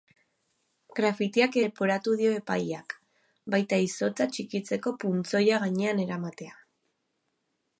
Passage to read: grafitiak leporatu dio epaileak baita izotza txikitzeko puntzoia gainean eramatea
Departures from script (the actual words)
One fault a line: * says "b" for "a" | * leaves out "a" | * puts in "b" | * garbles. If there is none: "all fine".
all fine